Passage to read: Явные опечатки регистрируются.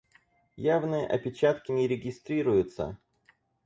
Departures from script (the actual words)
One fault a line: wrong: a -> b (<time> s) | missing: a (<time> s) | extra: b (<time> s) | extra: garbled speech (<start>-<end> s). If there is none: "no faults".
extra: не (1.7 s)